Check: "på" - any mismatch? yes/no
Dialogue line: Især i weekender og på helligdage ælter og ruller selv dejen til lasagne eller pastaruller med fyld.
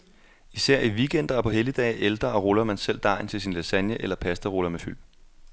no